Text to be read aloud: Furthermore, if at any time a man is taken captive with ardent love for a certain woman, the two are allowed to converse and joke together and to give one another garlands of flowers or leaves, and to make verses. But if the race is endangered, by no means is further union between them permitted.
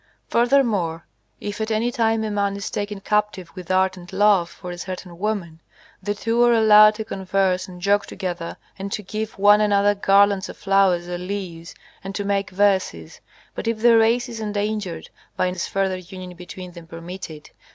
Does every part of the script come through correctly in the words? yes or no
no